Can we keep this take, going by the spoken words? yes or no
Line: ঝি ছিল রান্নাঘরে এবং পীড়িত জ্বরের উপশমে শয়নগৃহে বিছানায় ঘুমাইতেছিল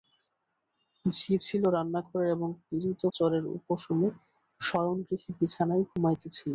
yes